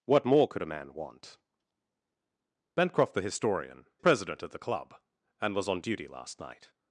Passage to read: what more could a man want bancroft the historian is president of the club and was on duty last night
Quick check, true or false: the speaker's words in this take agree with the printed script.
false